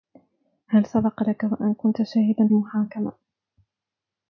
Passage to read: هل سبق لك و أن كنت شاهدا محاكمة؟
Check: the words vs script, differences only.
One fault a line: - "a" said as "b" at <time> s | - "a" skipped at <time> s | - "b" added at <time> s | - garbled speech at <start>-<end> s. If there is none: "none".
none